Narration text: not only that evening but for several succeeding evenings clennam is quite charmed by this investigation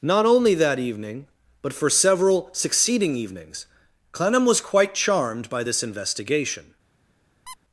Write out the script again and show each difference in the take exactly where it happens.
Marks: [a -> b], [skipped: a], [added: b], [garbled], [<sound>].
not only that evening but for several succeeding evenings clennam [is -> was] quite charmed by this investigation [squeak]